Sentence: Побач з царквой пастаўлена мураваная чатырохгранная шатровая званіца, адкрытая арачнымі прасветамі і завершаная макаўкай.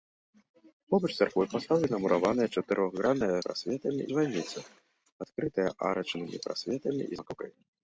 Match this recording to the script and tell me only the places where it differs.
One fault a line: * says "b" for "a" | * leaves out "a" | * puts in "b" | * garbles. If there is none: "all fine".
* says "прасветамі" for "шатровая"
* leaves out "завершаная"